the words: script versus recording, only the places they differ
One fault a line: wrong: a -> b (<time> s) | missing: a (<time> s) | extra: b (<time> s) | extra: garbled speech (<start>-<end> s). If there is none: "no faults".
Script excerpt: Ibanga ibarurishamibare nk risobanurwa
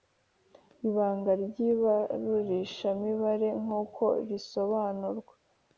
extra: ry (1.4 s)
extra: uko (3.8 s)